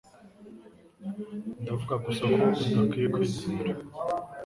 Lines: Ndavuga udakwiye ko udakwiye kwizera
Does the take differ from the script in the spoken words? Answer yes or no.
yes